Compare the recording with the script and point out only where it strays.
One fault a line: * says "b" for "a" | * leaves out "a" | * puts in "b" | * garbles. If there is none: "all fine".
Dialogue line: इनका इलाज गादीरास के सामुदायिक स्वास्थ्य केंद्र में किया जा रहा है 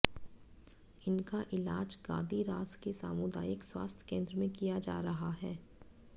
all fine